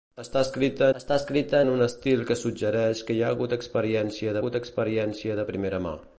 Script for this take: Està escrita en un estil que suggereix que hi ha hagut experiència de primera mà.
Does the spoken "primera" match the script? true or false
true